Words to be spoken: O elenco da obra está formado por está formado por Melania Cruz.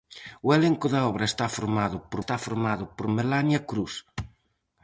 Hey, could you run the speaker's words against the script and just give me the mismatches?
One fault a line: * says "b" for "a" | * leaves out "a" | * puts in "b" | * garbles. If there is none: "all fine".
all fine